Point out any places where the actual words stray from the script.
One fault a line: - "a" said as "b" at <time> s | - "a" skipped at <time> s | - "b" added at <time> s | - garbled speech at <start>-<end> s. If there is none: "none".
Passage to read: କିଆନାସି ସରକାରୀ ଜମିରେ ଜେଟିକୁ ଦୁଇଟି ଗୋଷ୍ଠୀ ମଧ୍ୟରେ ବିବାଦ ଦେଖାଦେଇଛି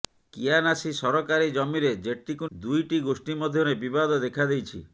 none